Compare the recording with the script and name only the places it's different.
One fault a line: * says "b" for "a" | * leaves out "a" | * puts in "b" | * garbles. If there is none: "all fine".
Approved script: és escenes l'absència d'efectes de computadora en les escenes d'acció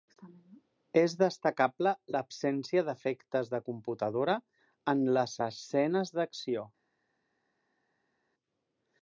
* says "destacable" for "escenes"